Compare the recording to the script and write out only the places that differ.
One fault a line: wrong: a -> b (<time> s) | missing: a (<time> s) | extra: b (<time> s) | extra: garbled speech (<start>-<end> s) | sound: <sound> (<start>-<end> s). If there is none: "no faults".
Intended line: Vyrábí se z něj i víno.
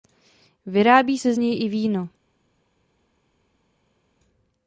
no faults